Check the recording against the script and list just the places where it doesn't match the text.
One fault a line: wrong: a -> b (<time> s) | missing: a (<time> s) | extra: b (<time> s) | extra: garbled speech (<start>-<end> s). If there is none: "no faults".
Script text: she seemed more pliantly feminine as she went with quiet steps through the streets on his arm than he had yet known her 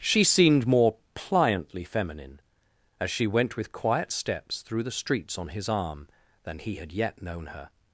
no faults